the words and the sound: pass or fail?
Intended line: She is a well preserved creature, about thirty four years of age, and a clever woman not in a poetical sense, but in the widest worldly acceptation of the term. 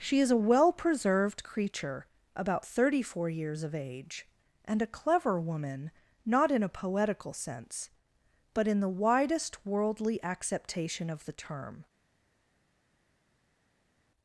pass